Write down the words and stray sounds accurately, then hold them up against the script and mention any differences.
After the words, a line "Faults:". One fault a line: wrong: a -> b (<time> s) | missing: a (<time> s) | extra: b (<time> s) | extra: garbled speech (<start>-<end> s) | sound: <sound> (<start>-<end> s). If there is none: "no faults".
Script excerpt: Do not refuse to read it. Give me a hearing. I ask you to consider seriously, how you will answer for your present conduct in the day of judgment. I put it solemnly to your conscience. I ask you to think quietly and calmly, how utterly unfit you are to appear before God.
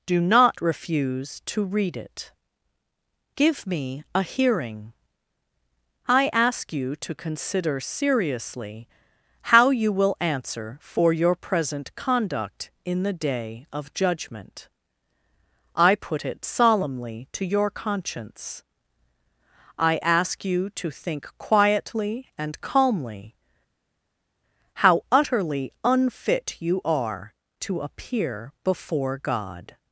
Do not refuse to read it. Give me a hearing. I ask you to consider seriously, how you will answer for your present conduct in the day of judgment. I put it solemnly to your conscience. I ask you to think quietly and calmly, how utterly unfit you are to appear before God.
Faults:
no faults